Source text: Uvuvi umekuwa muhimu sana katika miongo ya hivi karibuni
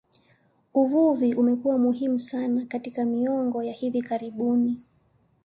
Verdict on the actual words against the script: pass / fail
pass